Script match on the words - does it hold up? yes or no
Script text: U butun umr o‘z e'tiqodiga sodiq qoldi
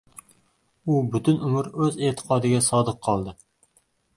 yes